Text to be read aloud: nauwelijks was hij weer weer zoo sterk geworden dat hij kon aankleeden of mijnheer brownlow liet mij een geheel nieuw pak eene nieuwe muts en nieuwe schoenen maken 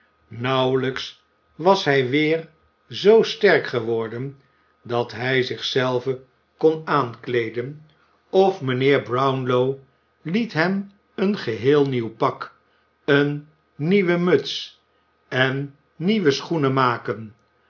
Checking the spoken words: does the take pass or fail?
fail